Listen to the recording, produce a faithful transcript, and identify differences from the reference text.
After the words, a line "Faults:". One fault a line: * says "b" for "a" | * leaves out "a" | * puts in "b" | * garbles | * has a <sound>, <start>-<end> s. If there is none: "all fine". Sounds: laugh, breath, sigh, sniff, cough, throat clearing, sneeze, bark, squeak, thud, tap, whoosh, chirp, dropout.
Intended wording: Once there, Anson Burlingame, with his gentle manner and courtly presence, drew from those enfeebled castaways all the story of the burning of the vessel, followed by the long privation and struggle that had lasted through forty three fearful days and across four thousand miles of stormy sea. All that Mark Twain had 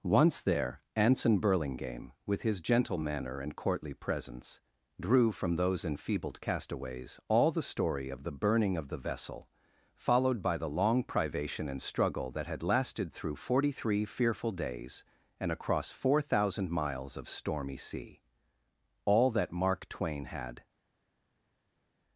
Once there, Anson Burlingame, with his gentle manner and courtly presence, drew from those enfeebled castaways all the story of the burning of the vessel, followed by the long privation and struggle that had lasted through forty three fearful days and across four thousand miles of stormy sea. All that Mark Twain had
Faults:
all fine